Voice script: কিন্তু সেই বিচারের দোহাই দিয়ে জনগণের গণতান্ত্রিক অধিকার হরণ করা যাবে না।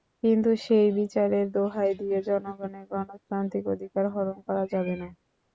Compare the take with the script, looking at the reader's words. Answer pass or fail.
pass